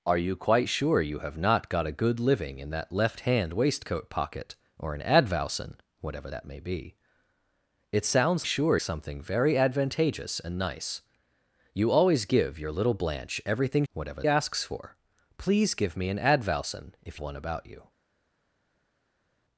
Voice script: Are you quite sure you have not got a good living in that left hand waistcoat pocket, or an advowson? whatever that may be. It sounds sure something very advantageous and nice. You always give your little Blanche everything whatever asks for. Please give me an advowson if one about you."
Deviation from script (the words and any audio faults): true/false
false